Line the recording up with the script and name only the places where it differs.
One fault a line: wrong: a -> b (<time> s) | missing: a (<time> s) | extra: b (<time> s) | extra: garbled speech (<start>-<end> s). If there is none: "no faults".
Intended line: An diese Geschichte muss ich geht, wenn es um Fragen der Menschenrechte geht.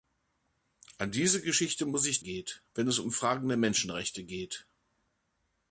no faults